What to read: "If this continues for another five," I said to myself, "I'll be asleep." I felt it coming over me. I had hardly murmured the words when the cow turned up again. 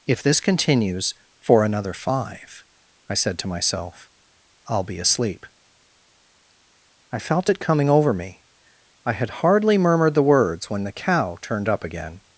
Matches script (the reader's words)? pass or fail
pass